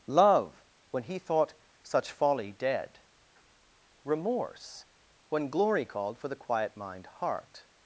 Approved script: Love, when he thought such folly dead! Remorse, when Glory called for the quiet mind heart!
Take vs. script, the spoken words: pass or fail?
pass